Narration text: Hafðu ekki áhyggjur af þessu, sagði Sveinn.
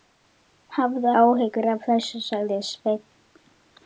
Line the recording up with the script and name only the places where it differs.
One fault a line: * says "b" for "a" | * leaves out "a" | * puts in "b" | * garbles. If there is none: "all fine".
* leaves out "ekki"